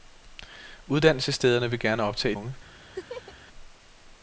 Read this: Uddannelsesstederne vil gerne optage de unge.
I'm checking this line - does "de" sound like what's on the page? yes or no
no